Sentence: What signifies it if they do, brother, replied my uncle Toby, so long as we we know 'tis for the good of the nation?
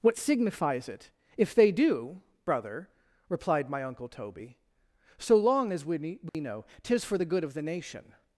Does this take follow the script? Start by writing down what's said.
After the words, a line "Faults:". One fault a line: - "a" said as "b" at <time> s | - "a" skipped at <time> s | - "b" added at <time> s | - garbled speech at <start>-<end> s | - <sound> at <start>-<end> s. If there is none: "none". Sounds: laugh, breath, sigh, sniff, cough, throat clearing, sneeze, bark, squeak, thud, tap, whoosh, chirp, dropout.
What signifies it if they do, brother, replied my uncle Toby, so long as we we know 'tis for the good of the nation?
Faults:
- dropout at 6.3-6.3 s